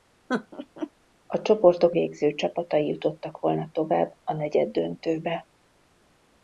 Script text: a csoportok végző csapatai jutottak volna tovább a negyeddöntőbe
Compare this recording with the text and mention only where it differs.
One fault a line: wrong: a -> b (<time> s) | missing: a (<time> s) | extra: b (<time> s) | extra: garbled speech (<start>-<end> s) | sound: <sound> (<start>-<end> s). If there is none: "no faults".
sound: laugh (0.3-0.9 s)